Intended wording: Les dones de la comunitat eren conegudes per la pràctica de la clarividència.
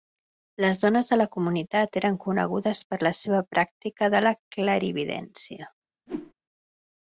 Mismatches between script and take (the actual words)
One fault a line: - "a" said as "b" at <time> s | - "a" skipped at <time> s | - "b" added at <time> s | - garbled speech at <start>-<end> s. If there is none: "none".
- "seva" added at 3.2 s